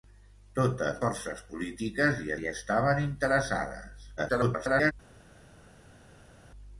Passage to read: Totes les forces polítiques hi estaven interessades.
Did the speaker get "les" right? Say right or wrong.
wrong